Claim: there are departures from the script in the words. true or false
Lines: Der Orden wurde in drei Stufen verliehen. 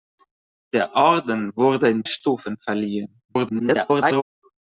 true